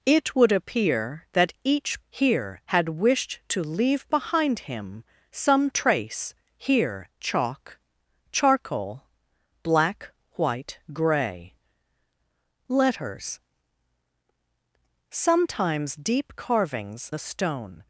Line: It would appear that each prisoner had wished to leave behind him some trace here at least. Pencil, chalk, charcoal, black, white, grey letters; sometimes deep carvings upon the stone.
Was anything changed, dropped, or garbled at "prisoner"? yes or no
yes